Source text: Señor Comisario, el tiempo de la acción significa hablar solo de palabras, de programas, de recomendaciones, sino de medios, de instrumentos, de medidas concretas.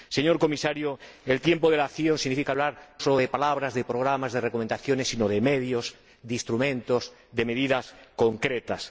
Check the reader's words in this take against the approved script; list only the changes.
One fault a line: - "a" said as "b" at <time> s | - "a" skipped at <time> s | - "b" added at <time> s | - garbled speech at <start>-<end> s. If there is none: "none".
none